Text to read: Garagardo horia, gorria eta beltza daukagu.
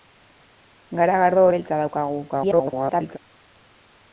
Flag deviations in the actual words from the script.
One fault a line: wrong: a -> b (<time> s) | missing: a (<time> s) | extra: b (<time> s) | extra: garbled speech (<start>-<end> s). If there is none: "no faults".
missing: horia gorria eta (1.4 s)
extra: garbled speech (2.3-3.2 s)